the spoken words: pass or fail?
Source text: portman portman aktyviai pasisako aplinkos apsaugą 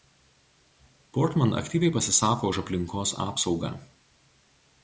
fail